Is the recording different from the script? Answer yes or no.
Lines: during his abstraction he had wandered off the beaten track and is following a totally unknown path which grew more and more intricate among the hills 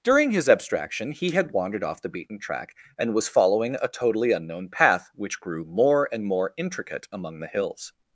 yes